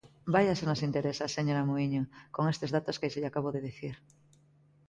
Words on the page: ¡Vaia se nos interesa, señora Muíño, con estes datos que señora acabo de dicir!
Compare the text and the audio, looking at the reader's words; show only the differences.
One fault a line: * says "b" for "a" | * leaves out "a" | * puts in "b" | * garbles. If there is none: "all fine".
* says "lle" for "señora"